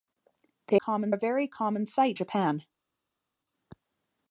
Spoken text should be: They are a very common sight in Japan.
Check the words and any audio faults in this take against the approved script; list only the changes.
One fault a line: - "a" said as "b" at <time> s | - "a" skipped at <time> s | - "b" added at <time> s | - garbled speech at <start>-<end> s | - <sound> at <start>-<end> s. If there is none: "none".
- "are" said as "common" at 0.7 s
- "in" skipped at 2.2 s